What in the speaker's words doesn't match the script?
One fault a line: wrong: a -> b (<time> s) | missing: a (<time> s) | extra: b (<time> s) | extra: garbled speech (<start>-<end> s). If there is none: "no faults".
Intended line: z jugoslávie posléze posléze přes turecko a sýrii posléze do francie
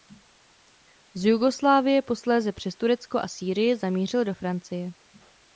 missing: posléze (2.5 s)
wrong: posléze -> zamířil (3.8 s)